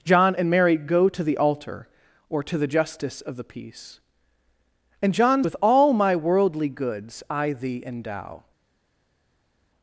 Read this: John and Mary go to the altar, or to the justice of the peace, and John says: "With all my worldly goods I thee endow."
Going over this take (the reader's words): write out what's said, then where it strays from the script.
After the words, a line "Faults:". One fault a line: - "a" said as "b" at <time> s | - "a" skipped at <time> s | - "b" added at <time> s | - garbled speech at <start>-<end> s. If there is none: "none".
John and Mary go to the altar, or to the justice of the peace, and John: "With all my worldly goods I thee endow."
Faults:
- "says" skipped at 5.4 s